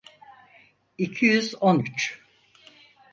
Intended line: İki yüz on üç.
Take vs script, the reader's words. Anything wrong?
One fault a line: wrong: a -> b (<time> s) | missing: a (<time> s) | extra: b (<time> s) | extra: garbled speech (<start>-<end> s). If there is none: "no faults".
no faults